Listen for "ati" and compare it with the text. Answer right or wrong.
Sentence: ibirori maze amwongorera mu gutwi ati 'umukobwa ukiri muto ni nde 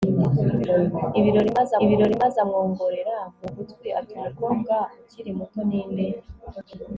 right